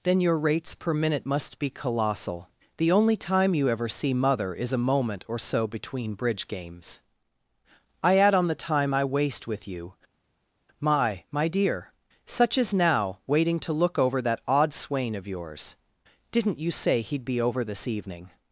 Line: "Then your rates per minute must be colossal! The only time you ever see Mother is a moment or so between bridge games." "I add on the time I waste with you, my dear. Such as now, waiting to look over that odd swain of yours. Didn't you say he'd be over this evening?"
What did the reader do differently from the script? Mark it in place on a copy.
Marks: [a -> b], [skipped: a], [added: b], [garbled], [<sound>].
"Then your rates per minute must be colossal! The only time you ever see Mother is a moment or so between bridge games." "I add on the time I waste with you, my [added: my] dear. Such as now, waiting to look over that odd swain of yours. Didn't you say he'd be over this evening?"